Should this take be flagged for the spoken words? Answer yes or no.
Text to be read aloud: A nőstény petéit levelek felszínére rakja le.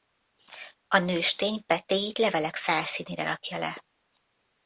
no